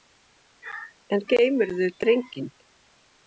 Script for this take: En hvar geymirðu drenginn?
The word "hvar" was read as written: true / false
false